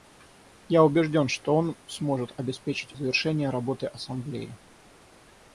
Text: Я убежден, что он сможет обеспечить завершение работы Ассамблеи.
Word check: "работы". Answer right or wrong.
right